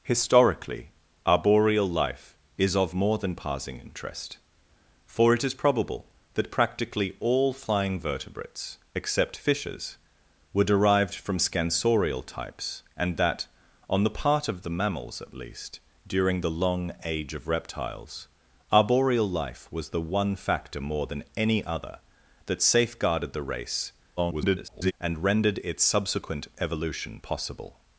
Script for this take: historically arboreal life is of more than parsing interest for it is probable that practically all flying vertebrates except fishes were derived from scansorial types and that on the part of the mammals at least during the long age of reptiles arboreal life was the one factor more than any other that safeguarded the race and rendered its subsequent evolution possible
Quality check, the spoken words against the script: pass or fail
fail